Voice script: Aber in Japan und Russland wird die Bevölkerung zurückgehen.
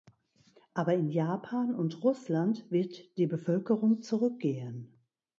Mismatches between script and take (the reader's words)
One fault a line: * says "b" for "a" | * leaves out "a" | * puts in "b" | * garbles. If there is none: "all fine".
all fine